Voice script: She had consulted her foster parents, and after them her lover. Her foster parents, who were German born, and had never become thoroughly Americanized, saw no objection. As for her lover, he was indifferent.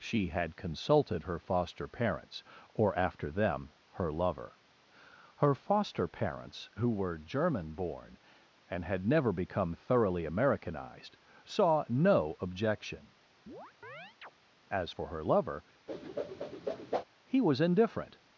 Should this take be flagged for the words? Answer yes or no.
yes